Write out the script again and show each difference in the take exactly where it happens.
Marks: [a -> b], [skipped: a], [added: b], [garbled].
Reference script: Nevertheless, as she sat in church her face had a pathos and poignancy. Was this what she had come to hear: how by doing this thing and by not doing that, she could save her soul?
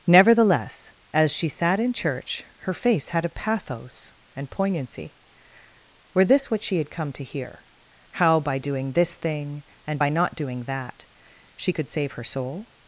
Nevertheless, as she sat in church her face had a pathos and poignancy. [Was -> Were] this what she had come to hear: how by doing this thing and by not doing that, she could save her soul?